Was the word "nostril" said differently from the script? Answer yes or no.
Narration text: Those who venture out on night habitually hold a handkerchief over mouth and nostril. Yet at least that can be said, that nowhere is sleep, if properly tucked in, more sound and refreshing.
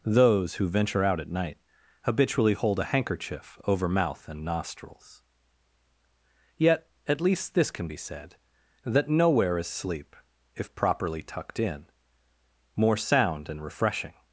yes